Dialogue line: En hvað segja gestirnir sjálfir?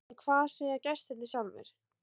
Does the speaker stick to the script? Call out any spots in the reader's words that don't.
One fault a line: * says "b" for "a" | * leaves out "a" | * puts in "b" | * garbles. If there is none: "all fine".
all fine